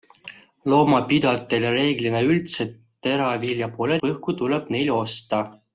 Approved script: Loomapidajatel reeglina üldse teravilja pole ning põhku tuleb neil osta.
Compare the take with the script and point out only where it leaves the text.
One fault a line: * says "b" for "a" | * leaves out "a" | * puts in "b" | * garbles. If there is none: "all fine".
* leaves out "ning"